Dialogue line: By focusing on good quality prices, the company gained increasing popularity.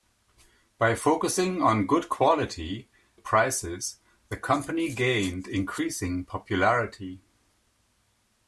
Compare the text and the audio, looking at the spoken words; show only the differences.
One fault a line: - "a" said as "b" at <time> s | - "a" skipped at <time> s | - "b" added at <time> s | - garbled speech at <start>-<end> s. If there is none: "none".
none